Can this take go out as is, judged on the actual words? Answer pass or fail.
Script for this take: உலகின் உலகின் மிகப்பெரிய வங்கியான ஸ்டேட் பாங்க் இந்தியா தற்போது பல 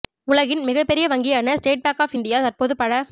fail